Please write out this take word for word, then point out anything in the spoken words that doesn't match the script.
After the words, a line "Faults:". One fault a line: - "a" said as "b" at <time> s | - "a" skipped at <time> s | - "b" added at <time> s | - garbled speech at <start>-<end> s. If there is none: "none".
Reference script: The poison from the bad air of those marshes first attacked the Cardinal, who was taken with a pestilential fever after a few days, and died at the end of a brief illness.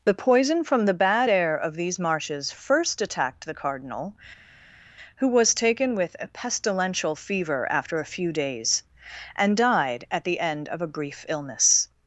The poison from the bad air of these marshes first attacked the Cardinal, who was taken with a pestilential fever after a few days, and died at the end of a brief illness.
Faults:
- "those" said as "these" at 1.7 s